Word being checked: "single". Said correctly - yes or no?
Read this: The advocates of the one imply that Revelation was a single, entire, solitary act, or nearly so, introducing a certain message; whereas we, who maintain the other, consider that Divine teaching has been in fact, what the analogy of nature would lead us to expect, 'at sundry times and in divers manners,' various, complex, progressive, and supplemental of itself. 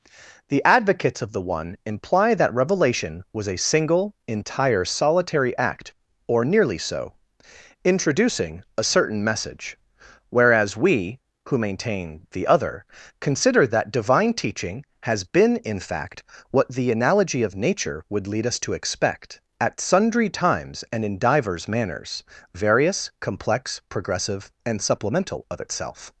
yes